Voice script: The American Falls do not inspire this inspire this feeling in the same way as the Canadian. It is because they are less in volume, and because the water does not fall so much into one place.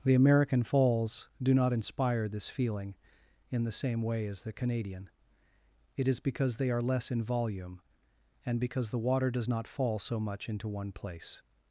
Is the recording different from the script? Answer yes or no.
yes